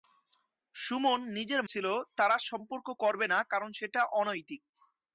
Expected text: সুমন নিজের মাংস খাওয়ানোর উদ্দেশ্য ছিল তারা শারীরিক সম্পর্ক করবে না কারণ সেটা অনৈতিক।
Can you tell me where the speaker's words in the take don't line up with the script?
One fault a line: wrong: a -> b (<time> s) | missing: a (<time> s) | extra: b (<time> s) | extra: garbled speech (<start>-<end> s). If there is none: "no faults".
missing: মাংস খাওয়ানোর উদ্দেশ্য (1.6 s)
missing: শারীরিক (2.4 s)